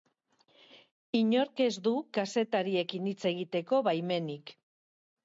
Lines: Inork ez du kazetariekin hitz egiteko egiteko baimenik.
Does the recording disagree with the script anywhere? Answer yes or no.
yes